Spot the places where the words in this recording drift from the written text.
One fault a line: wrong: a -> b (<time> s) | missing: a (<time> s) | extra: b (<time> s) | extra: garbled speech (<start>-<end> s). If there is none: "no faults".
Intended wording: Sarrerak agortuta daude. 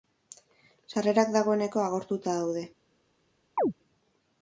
extra: dagoeneko (1.4 s)